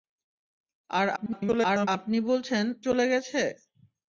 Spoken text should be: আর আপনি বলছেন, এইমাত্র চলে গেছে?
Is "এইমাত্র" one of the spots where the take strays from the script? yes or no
yes